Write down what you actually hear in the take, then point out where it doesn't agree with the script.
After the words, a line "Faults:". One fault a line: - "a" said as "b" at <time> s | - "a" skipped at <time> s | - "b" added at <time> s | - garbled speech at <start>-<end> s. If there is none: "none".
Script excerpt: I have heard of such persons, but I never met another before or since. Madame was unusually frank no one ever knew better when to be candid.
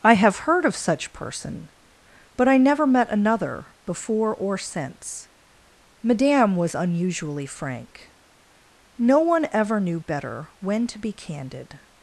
I have heard of such person, but I never met another before or since. Madame was unusually frank no one ever knew better when to be candid.
Faults:
- "persons" said as "person" at 1.1 s